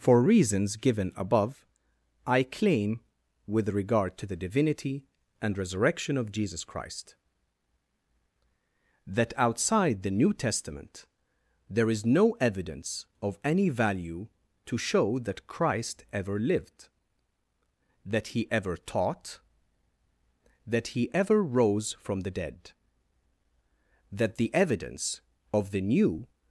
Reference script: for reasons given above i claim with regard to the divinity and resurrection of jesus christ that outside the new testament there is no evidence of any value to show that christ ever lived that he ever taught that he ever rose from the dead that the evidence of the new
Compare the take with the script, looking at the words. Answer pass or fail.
pass